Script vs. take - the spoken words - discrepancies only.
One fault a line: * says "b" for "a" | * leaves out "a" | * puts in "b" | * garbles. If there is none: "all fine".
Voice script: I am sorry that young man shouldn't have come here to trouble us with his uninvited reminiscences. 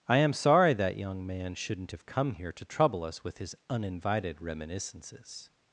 all fine